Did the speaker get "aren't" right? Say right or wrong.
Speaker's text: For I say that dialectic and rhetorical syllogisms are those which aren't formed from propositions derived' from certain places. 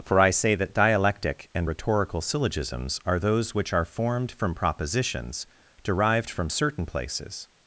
wrong